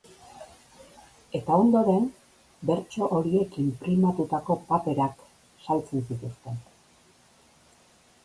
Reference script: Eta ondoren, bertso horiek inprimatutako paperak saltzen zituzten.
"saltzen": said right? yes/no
yes